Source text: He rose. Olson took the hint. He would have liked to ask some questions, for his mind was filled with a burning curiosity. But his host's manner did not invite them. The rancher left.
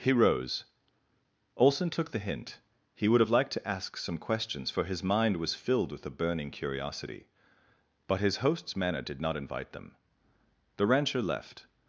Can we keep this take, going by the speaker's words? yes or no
yes